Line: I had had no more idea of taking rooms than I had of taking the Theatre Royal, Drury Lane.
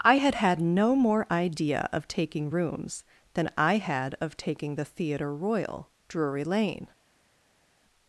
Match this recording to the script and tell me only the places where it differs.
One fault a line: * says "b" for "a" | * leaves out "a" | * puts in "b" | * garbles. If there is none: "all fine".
all fine